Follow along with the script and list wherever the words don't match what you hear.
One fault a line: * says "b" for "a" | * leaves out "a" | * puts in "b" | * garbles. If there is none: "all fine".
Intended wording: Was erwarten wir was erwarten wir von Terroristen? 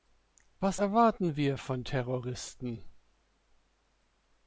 * leaves out "was erwarten wir"